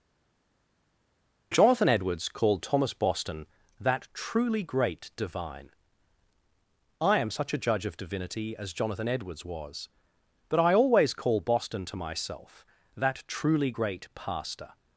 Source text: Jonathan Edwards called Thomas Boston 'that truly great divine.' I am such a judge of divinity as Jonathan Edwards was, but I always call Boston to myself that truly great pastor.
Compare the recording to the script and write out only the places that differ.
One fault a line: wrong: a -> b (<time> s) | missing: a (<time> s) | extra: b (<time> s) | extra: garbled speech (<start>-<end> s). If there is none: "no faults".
no faults